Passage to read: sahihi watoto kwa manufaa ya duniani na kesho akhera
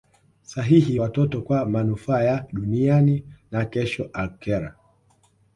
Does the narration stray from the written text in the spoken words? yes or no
no